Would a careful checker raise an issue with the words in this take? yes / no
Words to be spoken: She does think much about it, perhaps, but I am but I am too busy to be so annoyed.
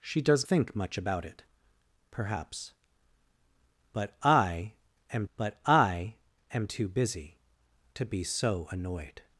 no